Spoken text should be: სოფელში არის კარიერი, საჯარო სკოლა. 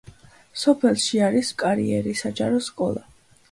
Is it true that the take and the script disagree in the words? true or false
false